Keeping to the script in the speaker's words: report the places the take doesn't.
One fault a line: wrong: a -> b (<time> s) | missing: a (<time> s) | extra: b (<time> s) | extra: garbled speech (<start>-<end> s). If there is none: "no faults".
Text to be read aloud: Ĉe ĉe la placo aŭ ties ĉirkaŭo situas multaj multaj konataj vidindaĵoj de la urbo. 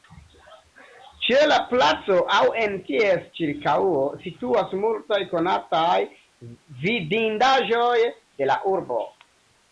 missing: ĉe (1.4 s)
extra: en (2.6 s)
missing: multaj (5.2 s)